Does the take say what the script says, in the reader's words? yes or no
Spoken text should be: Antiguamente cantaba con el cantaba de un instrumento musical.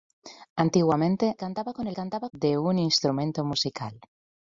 yes